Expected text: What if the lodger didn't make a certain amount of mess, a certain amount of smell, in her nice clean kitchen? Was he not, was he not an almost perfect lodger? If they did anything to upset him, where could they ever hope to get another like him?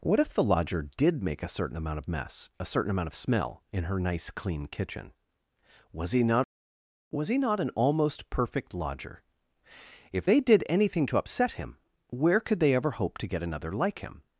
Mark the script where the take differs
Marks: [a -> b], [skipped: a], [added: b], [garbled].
What if the lodger [didn't -> did] make a certain amount of mess, a certain amount of smell, in her nice clean kitchen? Was he not, was he not an almost perfect lodger? If they did anything to upset him, where could they ever hope to get another like him?